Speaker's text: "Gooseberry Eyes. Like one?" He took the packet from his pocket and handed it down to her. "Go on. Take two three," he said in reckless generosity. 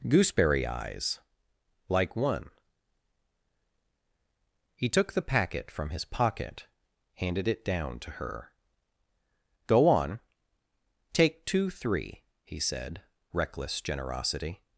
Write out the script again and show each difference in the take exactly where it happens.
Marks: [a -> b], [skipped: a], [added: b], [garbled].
"Gooseberry Eyes. Like one?" He took the packet from his pocket [skipped: and] handed it down to her. "Go on. Take two three," he said [skipped: in] reckless generosity.